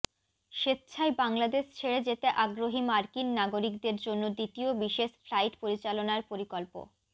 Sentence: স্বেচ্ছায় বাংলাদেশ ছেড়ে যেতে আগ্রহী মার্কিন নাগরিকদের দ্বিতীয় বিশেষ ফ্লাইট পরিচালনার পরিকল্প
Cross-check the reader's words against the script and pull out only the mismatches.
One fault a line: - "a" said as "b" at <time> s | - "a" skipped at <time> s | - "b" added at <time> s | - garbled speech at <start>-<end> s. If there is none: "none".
- "জন্য" added at 4.1 s